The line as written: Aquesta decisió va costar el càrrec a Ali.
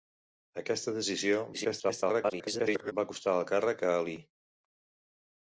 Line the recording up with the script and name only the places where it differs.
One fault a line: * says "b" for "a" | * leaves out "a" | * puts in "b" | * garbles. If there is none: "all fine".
* garbles